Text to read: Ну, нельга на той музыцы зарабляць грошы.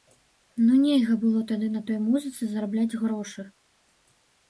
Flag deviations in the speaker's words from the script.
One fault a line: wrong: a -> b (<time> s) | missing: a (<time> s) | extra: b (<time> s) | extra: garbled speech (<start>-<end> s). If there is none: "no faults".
extra: было тады (1.3 s)